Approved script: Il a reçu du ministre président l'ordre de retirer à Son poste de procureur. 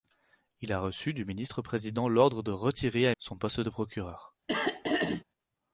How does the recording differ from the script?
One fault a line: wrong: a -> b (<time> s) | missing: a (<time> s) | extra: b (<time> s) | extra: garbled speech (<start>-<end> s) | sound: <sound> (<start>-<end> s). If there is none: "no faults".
sound: throat clearing (4.5-5.2 s)